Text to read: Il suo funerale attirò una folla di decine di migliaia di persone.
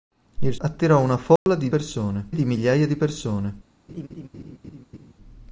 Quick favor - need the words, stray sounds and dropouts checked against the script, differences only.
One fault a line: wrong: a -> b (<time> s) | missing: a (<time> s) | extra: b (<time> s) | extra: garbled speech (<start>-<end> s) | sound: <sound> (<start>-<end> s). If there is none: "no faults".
missing: suo funerale (0.6 s)
sound: dropout (1.4-1.5 s)
wrong: decine -> persone (1.7 s)
sound: laugh (3.9-5.1 s)